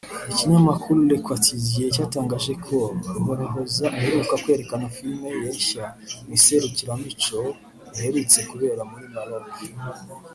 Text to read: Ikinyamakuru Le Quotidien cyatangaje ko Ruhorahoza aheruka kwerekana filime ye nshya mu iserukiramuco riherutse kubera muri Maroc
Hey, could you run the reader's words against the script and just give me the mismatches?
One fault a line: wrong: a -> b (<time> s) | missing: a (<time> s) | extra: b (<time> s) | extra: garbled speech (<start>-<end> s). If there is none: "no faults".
no faults